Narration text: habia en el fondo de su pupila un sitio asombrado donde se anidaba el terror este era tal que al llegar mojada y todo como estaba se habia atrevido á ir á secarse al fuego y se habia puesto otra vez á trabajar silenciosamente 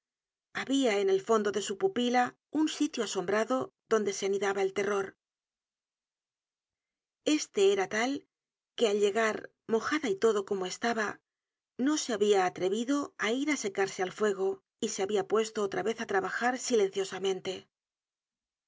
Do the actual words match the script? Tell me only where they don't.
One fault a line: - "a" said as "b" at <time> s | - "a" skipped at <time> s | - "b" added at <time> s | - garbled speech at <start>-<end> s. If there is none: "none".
- "no" added at 11.8 s